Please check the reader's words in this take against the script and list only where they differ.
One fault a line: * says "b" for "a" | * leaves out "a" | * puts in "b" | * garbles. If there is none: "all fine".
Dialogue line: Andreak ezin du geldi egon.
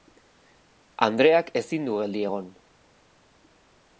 all fine